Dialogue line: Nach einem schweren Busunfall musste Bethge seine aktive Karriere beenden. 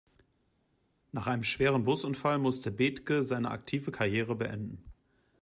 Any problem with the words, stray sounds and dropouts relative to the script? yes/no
no